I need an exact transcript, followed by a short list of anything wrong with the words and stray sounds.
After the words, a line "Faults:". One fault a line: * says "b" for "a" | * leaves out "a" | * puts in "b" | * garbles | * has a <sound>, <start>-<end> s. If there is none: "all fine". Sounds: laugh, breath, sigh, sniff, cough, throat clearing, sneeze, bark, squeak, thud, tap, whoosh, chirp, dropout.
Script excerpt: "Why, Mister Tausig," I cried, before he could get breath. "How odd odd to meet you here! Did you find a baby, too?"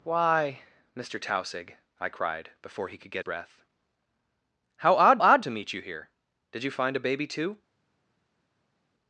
"Why, Mister Tausig," I cried, before he could get breath. "How odd odd to meet you here! Did you find a baby, too?"
Faults:
all fine